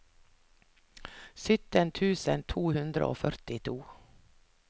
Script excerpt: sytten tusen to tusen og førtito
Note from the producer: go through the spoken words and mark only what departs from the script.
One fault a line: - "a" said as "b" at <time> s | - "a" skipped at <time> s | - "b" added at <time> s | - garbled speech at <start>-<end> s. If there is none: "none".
- "tusen" said as "hundre" at 2.8 s